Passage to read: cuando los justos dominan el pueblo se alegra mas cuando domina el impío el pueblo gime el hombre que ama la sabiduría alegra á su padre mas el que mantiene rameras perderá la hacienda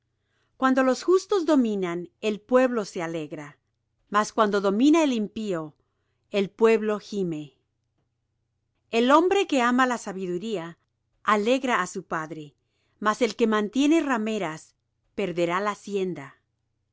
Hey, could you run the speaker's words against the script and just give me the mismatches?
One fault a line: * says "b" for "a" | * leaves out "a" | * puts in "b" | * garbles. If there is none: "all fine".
all fine